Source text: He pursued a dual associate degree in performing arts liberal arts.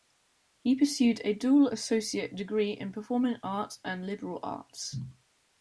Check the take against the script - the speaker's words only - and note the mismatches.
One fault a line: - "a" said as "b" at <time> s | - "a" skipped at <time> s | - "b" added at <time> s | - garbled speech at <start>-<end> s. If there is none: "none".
- "and" added at 3.8 s